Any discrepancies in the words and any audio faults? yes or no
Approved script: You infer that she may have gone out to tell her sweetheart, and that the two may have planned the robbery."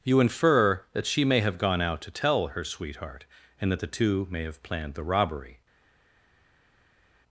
no